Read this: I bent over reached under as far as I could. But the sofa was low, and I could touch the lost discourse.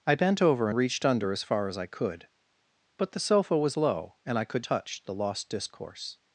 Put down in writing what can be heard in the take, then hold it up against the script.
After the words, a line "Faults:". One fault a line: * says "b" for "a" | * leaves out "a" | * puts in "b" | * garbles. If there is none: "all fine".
I bent over reached under as far as I could. But the sofa was low, and I could touch the lost discourse.
Faults:
all fine